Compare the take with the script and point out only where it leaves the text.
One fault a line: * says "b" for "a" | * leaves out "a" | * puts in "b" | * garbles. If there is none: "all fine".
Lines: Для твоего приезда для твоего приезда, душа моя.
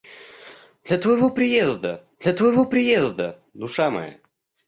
all fine